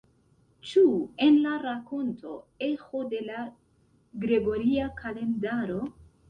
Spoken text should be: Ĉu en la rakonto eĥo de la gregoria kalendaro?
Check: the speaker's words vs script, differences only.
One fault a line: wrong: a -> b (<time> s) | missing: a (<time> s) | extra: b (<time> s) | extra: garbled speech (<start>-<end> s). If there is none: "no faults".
no faults